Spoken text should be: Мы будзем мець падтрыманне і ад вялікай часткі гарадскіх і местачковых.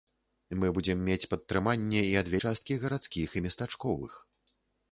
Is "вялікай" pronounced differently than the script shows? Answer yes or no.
yes